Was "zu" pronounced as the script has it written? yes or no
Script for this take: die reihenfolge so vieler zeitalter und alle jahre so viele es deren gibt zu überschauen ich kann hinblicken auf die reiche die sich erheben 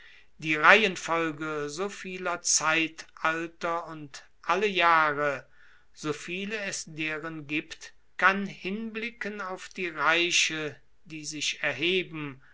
no